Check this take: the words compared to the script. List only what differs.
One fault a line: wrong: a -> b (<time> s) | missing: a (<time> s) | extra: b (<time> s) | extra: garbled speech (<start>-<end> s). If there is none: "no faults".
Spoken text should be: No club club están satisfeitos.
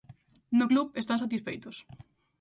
missing: club (0.9 s)